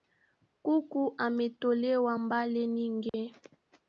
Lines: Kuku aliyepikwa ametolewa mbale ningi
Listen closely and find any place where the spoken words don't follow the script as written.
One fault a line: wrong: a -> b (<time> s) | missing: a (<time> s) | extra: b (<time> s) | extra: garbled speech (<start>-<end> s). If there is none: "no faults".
missing: aliyepikwa (1.1 s)